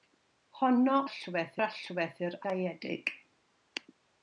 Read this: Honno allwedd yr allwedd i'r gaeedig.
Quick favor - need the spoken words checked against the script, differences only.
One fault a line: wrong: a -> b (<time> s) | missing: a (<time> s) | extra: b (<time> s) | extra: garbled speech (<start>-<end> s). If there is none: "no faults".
no faults